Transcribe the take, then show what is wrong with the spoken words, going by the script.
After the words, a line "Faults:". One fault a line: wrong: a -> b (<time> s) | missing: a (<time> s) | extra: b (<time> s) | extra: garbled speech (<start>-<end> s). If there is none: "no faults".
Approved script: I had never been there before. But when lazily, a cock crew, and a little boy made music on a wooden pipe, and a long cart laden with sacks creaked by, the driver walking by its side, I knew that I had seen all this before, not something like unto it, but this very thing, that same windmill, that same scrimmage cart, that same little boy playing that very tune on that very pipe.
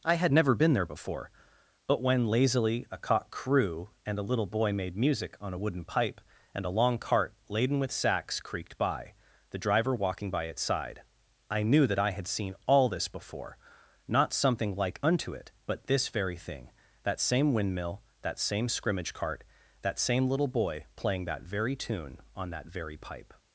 I had never been there before. But when lazily, a cock crew, and a little boy made music on a wooden pipe, and a long cart laden with sacks creaked by, the driver walking by its side, I knew that I had seen all this before, not something like unto it, but this very thing, that same windmill, that same scrimmage cart, that same little boy playing that very tune on that very pipe.
Faults:
no faults